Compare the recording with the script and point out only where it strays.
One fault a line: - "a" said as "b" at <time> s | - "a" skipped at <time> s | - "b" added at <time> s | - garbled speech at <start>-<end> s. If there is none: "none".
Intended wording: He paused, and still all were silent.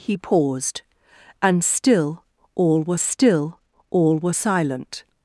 - "still all were" added at 3.0 s